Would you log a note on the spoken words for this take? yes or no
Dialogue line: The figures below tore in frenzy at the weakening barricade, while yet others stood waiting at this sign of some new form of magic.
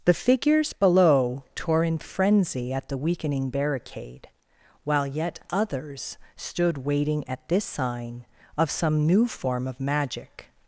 no